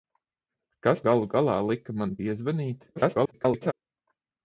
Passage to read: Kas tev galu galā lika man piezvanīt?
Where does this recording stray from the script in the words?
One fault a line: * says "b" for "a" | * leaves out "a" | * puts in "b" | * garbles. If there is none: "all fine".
* leaves out "tev"
* garbles